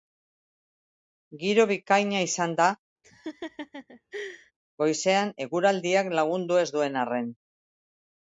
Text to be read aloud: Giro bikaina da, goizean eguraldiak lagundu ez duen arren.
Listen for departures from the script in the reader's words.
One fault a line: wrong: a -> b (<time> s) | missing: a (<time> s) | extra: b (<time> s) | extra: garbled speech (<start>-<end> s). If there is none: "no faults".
extra: izan (2.3 s)